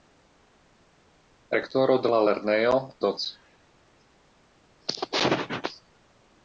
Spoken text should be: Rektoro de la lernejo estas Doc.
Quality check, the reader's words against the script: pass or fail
fail